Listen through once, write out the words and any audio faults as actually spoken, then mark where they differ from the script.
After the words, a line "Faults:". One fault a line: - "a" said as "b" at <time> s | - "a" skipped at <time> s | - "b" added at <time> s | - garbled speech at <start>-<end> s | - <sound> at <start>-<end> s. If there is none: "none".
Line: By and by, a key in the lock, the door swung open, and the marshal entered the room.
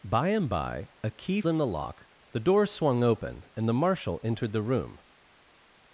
By and by, a key in the lock, the door swung open, and the marshal entered the room.
Faults:
none